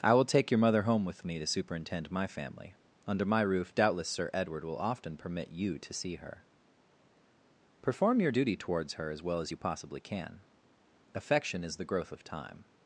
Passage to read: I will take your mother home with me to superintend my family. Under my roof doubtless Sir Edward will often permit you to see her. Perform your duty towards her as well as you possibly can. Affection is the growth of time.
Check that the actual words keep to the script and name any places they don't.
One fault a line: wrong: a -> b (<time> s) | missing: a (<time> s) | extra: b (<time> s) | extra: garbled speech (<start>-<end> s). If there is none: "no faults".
no faults